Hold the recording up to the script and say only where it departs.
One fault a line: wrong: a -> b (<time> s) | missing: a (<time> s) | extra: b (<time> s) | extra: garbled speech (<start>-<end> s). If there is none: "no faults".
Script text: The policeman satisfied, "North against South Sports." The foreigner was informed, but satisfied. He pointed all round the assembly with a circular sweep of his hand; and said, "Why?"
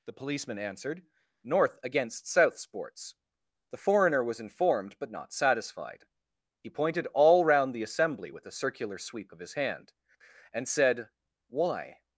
wrong: satisfied -> answered (0.6 s)
extra: not (5.1 s)